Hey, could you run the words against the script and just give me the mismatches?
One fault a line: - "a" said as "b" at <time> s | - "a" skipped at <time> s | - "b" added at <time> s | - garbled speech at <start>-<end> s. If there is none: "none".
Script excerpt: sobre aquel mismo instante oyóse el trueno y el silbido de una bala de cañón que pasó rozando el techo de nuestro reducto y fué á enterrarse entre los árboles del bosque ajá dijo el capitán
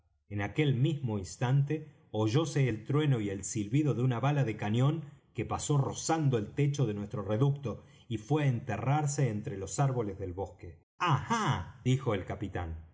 - "sobre" said as "en" at 0.3 s